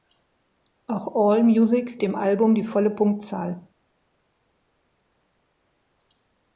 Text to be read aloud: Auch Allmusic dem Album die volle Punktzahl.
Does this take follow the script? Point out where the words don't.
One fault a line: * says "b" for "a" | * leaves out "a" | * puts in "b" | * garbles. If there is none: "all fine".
all fine